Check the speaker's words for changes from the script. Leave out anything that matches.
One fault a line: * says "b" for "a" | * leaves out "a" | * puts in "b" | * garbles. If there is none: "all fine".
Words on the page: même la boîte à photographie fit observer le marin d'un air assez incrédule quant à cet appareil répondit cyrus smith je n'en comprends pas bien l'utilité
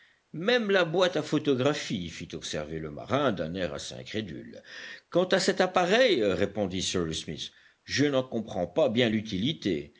all fine